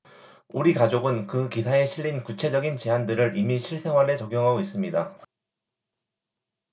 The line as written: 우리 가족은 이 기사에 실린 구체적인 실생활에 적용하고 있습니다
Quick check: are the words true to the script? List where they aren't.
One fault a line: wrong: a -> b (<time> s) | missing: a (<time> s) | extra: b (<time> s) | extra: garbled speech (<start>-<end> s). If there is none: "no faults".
wrong: 이 -> 그 (1.3 s)
extra: 제안들을 이미 (2.8 s)